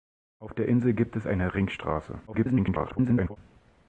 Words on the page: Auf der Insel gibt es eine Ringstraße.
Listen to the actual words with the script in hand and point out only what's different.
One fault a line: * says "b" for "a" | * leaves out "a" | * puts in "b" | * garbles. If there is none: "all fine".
* garbles